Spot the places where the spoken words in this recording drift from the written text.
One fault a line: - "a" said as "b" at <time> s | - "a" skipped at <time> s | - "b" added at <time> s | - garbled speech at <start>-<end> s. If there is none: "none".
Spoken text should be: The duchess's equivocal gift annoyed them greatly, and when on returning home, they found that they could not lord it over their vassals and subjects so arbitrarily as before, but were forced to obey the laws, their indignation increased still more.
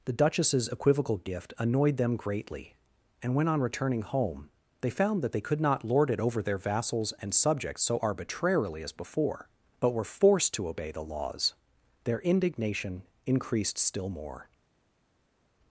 none